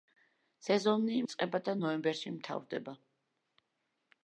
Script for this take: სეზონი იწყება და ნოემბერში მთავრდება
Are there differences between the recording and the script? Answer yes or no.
no